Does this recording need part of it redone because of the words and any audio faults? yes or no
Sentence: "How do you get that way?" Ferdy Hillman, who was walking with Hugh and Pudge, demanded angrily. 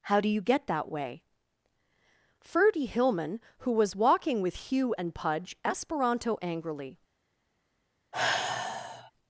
yes